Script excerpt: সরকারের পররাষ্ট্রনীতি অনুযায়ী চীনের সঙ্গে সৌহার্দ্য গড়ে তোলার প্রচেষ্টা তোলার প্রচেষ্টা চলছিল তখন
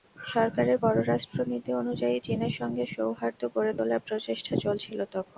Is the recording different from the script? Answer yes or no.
yes